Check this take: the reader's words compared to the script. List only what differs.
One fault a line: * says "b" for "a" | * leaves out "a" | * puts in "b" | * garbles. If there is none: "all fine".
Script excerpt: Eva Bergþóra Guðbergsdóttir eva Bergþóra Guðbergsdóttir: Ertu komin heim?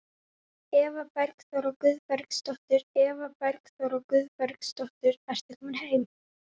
all fine